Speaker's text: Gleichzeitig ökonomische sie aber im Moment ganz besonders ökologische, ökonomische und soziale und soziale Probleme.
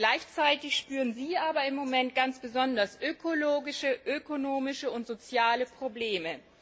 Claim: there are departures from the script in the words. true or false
true